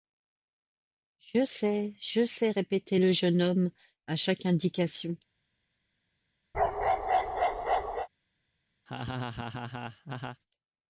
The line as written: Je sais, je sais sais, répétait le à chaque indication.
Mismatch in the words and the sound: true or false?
true